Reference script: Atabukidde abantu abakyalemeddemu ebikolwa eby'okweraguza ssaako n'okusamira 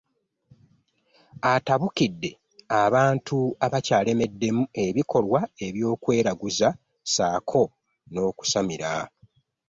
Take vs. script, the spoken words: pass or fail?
pass